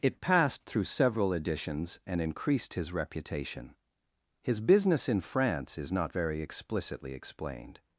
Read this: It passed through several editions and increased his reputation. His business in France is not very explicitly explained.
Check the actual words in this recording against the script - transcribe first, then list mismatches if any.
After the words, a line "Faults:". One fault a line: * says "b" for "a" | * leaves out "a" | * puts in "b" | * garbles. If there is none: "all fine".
It passed through several editions and increased his reputation. His business in France is not very explicitly explained.
Faults:
all fine